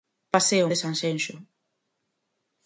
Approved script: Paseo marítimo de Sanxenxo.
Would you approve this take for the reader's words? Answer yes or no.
no